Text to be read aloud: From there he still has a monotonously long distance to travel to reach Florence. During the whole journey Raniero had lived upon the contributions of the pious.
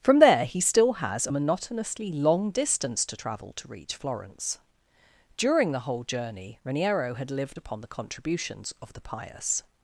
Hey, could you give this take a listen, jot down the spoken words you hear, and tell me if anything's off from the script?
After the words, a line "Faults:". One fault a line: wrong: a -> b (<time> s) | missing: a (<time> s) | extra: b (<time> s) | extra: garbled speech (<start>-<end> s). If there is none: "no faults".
From there he still has a monotonously long distance to travel to reach Florence. During the whole journey Raniero had lived upon the contributions of the pious.
Faults:
no faults